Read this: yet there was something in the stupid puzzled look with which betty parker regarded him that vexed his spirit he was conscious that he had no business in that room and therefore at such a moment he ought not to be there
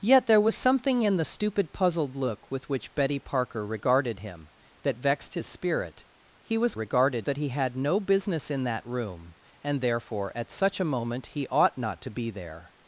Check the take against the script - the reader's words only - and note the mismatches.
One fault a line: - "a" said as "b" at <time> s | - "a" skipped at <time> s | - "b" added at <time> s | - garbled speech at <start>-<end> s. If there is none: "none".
- "conscious" said as "regarded" at 6.7 s